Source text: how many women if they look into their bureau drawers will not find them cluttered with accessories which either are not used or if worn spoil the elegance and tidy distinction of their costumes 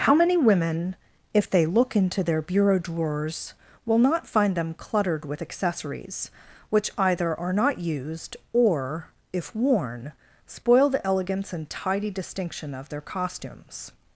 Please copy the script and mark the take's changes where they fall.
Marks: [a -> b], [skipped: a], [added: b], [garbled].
how many women if they look into their bureau drawers will not find them cluttered with accessories which either are not used or if worn spoil the elegance and tidy distinction of their costumes